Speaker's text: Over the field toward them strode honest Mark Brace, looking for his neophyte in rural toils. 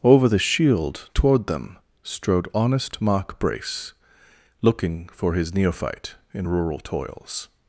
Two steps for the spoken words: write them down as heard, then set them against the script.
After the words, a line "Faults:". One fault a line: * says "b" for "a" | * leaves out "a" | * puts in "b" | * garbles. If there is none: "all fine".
Over the shield toward them strode honest Mark Brace, looking for his neophyte in rural toils.
Faults:
* says "shield" for "field"